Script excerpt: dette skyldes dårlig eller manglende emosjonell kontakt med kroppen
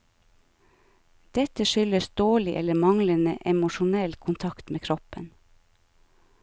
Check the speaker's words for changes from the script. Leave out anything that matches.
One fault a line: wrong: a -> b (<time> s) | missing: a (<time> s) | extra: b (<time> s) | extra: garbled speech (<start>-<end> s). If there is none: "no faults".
no faults